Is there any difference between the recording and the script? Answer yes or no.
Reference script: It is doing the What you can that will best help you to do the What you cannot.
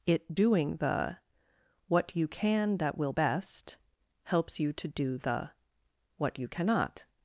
yes